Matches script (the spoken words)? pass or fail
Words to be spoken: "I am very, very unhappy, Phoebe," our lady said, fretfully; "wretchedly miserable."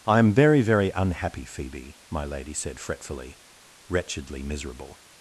fail